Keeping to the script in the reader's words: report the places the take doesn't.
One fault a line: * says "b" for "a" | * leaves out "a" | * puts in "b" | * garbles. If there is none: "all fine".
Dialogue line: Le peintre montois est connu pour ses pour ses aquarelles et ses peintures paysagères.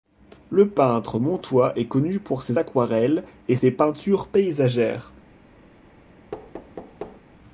* leaves out "pour ses"